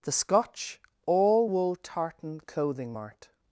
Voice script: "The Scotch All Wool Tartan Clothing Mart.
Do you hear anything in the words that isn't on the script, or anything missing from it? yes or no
no